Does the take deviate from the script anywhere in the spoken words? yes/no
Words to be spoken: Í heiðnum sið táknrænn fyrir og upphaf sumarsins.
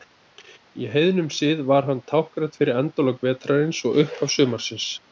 yes